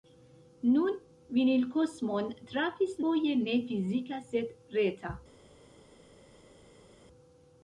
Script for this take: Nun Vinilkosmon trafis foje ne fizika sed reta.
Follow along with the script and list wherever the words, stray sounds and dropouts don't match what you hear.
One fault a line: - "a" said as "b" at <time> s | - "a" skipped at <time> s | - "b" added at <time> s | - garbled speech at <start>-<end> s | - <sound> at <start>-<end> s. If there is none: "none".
none